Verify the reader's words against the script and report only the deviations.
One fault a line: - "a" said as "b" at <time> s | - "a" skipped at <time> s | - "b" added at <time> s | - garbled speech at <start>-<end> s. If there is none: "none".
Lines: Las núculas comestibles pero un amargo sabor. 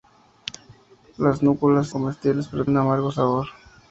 none